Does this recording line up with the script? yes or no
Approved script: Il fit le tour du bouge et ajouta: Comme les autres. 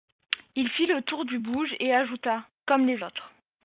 yes